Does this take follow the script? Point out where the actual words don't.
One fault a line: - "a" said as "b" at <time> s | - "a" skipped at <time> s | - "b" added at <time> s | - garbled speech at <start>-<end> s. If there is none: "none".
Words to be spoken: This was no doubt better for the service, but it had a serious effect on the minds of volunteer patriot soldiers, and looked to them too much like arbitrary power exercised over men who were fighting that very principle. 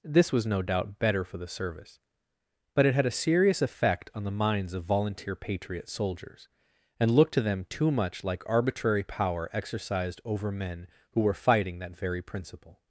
none